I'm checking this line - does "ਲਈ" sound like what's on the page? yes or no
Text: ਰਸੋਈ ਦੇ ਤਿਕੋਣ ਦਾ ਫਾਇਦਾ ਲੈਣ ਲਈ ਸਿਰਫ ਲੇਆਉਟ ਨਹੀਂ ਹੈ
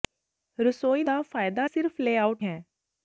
no